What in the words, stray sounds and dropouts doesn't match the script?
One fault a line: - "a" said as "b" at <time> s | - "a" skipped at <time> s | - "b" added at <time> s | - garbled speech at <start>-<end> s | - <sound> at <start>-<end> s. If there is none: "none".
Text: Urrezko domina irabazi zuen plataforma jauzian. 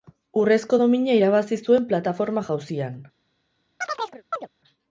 - chirp at 3.8-4.5 s